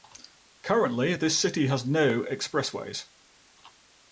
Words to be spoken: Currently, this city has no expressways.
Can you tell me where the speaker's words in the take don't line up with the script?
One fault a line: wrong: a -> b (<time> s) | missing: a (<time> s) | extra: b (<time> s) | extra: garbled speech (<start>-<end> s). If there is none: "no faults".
no faults